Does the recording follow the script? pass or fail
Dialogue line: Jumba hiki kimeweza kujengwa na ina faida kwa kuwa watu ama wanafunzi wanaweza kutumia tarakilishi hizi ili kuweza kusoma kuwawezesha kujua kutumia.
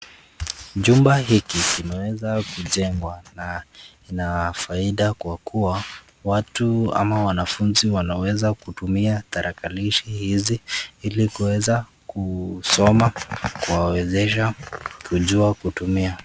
pass